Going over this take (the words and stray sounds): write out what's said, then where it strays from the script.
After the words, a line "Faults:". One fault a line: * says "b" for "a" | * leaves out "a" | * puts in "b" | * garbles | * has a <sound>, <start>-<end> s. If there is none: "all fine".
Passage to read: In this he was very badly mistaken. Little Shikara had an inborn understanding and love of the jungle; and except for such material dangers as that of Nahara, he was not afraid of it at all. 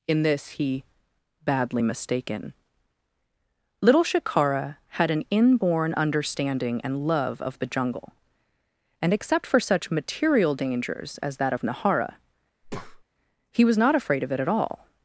In this he badly mistaken. Little Shikara had an inborn understanding and love of the jungle; and except for such material dangers as that of Nahara, he was not afraid of it at all.
Faults:
* leaves out "was very"
* has a breath, 12.6-13.0 s